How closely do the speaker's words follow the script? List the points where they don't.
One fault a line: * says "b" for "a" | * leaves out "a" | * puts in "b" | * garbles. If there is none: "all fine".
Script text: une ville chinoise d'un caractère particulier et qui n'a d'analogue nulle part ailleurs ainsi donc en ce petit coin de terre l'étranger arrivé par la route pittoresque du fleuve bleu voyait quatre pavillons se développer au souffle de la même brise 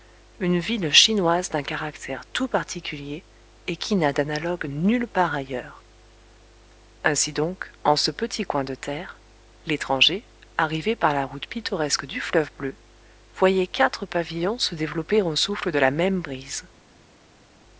* puts in "tout"